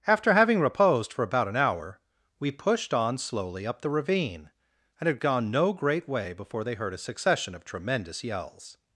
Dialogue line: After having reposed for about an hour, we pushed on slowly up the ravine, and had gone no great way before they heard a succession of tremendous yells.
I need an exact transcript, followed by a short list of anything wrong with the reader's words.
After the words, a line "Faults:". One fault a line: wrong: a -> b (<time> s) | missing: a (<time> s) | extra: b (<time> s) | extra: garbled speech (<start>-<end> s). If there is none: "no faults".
After having reposed for about an hour, we pushed on slowly up the ravine, and had gone no great way before they heard a succession of tremendous yells.
Faults:
no faults